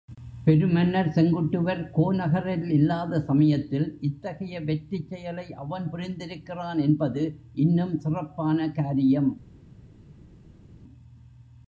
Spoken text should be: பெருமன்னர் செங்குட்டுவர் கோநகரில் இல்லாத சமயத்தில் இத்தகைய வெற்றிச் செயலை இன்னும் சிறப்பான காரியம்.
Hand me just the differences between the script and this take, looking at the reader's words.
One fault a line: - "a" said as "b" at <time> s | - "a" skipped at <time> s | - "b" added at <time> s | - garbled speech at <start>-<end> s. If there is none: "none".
- "அவன் புரிந்திருக்கிறான் என்பது" added at 5.5 s